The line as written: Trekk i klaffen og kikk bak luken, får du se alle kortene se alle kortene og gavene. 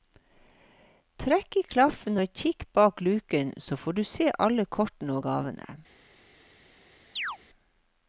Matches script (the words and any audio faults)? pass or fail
fail